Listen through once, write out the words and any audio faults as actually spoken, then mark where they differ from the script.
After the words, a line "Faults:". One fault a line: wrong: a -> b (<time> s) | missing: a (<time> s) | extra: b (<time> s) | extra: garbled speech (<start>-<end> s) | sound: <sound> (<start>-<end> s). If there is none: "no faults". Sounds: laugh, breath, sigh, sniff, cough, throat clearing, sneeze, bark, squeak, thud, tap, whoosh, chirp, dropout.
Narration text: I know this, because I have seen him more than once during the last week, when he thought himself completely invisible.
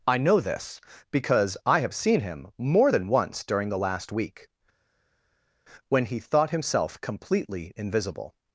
I know this, because I have seen him more than once during the last week, when he thought himself completely invisible.
Faults:
no faults